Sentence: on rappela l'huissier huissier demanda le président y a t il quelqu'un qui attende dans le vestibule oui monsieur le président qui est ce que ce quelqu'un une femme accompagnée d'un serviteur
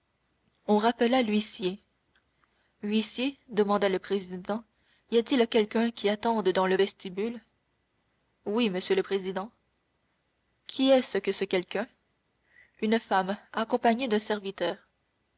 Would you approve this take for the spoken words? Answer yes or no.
yes